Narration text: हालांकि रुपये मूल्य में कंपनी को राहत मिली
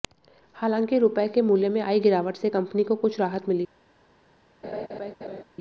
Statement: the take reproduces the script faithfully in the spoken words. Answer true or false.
false